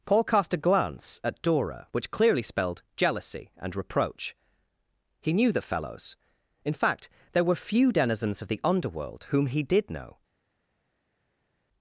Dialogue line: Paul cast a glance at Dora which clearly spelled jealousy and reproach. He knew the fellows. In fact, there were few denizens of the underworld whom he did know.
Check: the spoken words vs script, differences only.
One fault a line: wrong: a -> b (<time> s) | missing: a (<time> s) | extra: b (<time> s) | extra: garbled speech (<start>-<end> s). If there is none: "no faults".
no faults